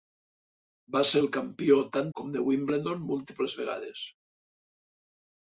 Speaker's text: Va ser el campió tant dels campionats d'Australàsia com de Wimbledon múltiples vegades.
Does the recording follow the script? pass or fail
fail